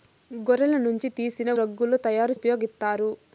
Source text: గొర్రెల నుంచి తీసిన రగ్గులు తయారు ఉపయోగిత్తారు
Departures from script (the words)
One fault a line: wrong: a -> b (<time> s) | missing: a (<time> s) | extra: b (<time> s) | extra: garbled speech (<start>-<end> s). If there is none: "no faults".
no faults